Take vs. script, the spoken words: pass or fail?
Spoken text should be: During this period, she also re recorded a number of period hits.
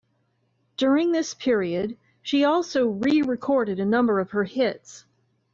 fail